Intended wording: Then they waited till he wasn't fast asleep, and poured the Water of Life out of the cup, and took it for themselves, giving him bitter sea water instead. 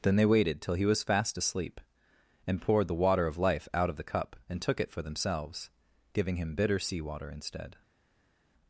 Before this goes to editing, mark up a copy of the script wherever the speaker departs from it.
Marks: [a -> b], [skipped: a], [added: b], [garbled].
Then they waited till he [wasn't -> was] fast asleep, and poured the Water of Life out of the cup, and took it for themselves, giving him bitter sea water instead.